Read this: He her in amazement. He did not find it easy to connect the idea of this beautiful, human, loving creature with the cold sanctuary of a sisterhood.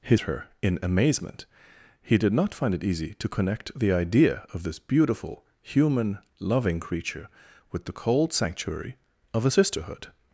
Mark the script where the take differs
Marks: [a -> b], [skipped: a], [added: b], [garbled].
He her in amazement. He did not find it easy to connect the idea of this beautiful, human, loving creature with the cold sanctuary of a sisterhood.